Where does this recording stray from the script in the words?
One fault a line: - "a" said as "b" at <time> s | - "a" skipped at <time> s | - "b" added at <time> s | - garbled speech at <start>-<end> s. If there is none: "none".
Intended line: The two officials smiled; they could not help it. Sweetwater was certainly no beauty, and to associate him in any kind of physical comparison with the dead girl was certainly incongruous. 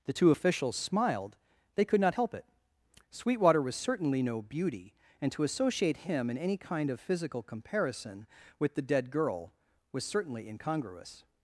none